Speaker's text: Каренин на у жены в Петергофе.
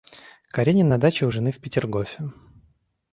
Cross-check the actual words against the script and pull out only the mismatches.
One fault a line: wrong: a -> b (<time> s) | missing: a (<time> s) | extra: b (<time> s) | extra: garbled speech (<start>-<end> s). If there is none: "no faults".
extra: даче (1.0 s)